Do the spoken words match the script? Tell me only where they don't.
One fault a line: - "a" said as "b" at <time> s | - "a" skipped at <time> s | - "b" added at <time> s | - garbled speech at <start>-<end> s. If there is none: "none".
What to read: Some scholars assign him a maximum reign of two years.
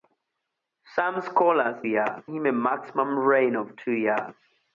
- "assign" said as "years" at 1.8 s